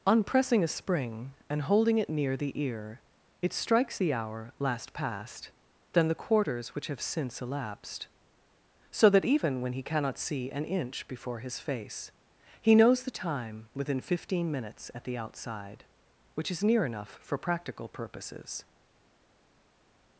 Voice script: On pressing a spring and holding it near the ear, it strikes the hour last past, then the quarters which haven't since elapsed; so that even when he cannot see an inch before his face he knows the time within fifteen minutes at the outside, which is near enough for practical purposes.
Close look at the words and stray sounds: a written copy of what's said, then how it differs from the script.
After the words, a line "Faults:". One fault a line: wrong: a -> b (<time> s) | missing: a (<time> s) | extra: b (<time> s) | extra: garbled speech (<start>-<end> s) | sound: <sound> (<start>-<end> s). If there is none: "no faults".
On pressing a spring and holding it near the ear, it strikes the hour last past, then the quarters which have since elapsed; so that even when he cannot see an inch before his face he knows the time within fifteen minutes at the outside, which is near enough for practical purposes.
Faults:
wrong: haven't -> have (6.9 s)